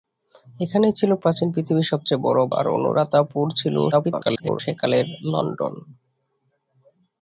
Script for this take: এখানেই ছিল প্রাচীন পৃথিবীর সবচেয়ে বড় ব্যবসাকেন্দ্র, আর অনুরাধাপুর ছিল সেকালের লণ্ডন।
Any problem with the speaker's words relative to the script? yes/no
yes